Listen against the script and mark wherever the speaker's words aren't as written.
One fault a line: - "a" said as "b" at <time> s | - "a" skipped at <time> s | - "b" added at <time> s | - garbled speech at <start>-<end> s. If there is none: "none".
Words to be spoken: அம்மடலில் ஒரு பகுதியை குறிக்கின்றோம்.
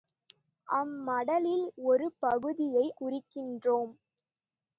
none